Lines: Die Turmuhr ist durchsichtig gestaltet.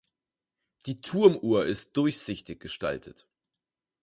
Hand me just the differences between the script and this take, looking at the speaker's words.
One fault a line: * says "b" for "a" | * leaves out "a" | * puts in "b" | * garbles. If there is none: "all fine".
all fine